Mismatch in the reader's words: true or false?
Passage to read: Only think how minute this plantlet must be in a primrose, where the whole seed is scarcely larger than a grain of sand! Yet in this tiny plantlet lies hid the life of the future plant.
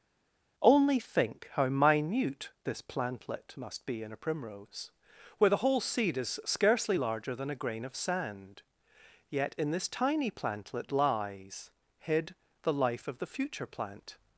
false